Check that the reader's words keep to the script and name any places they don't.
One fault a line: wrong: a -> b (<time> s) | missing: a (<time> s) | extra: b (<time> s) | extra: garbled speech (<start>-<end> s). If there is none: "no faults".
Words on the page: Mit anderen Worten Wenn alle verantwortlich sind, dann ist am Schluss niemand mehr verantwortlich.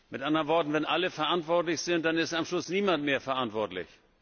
no faults